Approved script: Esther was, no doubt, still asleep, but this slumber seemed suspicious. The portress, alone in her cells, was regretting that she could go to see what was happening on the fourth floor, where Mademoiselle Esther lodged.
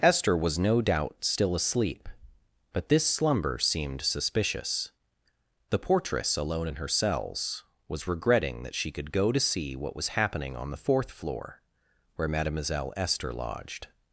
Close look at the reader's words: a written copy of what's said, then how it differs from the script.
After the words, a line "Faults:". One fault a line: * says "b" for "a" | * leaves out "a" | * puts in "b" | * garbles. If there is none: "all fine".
Esther was, no doubt, still asleep, but this slumber seemed suspicious. The portress, alone in her cells, was regretting that she could go to see what was happening on the fourth floor, where Mademoiselle Esther lodged.
Faults:
all fine